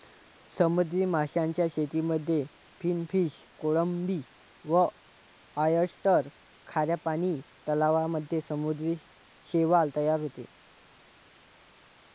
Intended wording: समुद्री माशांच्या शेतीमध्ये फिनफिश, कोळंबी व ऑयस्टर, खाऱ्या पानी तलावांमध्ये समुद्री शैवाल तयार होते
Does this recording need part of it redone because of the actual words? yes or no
no